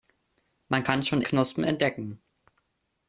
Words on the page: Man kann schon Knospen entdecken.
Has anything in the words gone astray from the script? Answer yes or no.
no